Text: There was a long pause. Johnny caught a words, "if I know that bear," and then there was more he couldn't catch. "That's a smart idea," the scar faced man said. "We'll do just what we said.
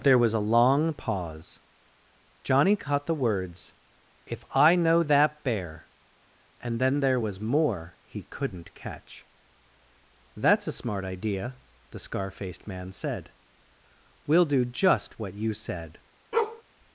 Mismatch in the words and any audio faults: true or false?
true